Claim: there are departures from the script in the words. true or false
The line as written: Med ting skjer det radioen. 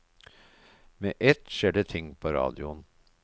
true